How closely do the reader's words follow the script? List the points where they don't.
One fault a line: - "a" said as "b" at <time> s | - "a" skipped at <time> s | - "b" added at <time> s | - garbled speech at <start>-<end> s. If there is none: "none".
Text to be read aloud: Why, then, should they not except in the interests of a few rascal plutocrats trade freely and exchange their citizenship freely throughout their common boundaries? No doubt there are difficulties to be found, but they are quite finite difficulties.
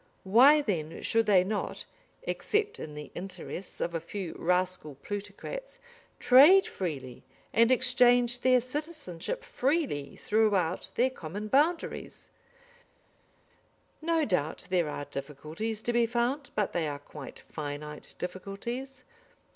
none